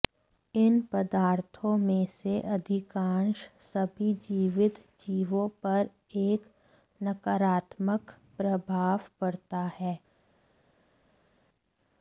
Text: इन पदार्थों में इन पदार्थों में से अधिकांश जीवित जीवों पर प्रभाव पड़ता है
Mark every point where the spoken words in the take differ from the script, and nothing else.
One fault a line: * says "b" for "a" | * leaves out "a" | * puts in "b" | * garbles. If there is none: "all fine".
* leaves out "इन पदार्थों में"
* puts in "सभी"
* puts in "एक नकारात्मक"